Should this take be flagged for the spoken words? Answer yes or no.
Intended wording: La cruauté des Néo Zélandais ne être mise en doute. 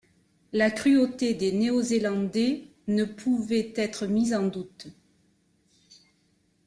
yes